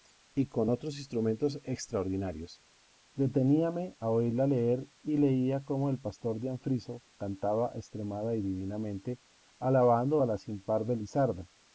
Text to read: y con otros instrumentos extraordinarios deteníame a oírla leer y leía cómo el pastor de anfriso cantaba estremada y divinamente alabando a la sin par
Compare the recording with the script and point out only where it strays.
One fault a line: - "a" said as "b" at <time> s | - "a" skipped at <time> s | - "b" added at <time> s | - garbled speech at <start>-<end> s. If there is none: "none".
none